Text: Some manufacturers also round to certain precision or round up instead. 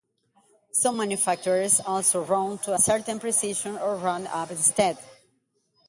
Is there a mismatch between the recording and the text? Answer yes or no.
no